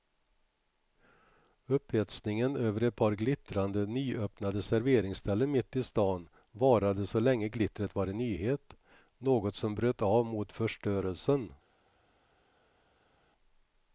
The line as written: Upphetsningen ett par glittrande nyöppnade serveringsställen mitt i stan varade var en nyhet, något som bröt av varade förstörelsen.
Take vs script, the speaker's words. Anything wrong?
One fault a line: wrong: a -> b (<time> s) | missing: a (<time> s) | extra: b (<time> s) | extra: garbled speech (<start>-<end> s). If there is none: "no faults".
extra: över (2.5 s)
extra: så länge glittret (7.1 s)
wrong: varade -> mot (10.3 s)